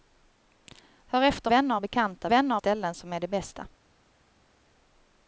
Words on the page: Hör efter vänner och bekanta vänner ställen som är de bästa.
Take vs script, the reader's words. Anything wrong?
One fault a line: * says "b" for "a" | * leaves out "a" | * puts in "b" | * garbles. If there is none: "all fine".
all fine